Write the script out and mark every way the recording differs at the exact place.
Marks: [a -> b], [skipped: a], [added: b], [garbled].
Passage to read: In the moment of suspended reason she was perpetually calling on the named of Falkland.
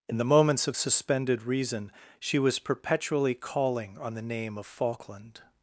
In the [moment -> moments] of suspended reason she was perpetually calling on the [named -> name] of Falkland.